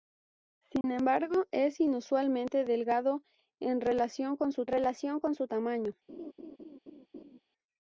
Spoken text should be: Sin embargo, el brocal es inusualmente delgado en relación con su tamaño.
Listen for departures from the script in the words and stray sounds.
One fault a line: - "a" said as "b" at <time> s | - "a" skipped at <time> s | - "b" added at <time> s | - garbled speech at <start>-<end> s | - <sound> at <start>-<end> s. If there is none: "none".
- dropout at 0.8-0.8 s
- "el brocal" skipped at 1.4 s
- "relación con su" added at 4.7 s
- laugh at 6.1-7.4 s